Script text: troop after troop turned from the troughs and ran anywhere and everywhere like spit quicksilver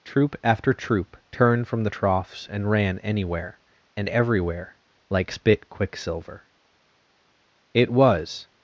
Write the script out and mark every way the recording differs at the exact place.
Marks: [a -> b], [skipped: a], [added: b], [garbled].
troop after troop turned from the troughs and ran anywhere and everywhere like spit quicksilver [added: it was]